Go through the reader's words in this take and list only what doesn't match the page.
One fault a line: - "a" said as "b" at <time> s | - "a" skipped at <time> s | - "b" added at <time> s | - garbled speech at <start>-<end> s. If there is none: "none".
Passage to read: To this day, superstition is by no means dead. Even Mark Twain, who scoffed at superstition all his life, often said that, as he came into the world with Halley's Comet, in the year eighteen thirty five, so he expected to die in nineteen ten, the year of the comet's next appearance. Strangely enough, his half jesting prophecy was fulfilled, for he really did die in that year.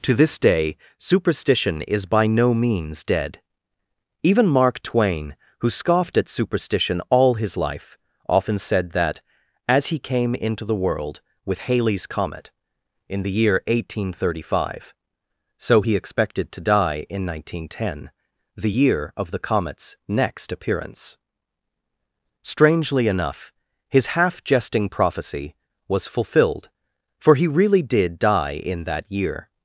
none